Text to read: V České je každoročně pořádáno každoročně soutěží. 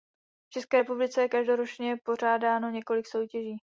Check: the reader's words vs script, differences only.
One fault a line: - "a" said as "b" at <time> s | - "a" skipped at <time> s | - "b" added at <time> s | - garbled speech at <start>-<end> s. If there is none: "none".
- "republice" added at 0.8 s
- "každoročně" said as "několik" at 2.7 s